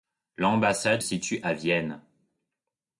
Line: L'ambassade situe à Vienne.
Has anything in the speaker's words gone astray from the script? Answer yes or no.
no